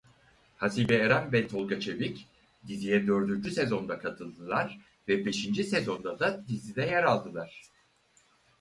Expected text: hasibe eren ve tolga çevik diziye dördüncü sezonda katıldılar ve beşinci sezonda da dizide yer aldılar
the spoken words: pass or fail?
pass